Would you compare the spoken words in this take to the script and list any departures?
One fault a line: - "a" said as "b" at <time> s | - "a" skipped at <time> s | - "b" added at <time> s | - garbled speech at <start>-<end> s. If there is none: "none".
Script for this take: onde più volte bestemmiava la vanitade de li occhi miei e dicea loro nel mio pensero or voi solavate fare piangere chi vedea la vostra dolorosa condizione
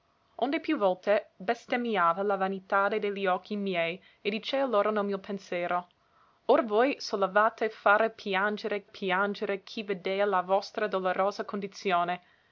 - "piangere" added at 8.8 s